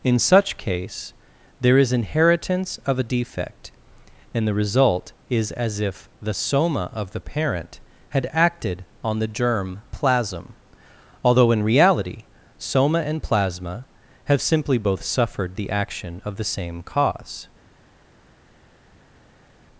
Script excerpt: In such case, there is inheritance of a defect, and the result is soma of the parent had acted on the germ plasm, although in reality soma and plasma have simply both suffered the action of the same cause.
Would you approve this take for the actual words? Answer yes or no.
no